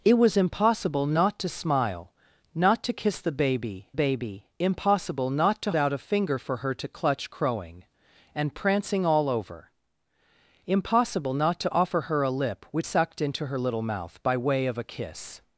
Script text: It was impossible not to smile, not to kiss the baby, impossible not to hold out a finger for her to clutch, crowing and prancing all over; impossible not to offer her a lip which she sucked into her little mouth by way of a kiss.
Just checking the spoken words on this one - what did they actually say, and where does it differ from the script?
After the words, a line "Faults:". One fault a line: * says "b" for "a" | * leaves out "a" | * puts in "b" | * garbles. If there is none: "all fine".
It was impossible not to smile, not to kiss the baby baby, impossible not to out a finger for her to clutch, crowing and prancing all over; impossible not to offer her a lip which sucked into her little mouth by way of a kiss.
Faults:
* puts in "baby"
* leaves out "hold"
* leaves out "she"